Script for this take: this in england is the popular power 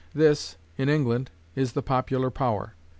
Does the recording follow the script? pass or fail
pass